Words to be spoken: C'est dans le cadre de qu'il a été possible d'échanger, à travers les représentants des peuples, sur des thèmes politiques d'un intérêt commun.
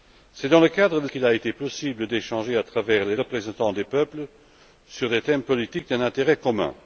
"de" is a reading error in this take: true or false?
false